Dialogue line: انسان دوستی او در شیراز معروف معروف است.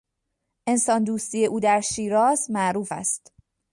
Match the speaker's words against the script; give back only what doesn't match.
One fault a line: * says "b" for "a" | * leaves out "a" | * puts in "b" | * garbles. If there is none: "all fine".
* leaves out "معروف"